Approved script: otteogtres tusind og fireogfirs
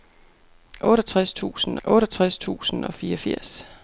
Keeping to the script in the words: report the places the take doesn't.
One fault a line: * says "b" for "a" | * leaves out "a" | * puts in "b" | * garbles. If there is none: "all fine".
* puts in "otteogtres tusind"